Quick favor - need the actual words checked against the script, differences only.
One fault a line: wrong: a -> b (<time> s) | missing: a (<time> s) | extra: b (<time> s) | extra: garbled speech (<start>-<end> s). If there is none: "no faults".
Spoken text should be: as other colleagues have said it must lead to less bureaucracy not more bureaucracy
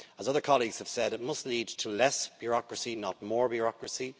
no faults